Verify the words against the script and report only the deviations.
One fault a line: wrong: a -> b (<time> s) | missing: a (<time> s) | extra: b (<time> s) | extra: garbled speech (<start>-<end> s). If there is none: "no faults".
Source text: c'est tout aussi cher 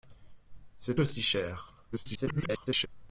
missing: tout (0.9 s)
extra: garbled speech (1.9-2.9 s)